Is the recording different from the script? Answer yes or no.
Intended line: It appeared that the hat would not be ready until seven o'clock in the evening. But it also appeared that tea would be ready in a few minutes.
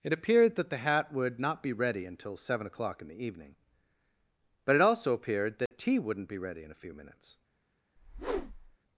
yes